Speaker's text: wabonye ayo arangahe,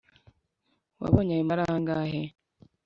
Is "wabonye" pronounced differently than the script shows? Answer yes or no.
no